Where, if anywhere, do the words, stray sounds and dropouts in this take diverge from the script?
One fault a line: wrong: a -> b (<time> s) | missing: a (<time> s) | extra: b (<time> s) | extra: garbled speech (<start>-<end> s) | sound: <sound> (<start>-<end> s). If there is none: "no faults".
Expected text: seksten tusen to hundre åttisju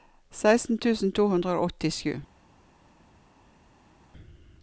extra: og (1.5 s)